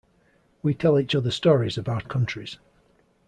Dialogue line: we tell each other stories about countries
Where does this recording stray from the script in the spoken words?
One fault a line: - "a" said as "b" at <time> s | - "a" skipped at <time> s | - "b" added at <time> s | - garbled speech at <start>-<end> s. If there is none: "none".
none